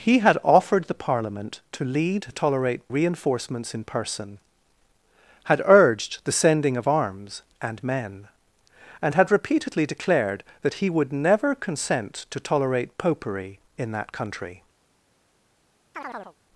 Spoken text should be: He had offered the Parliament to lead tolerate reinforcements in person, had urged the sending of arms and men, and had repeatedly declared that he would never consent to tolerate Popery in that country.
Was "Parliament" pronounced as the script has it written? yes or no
yes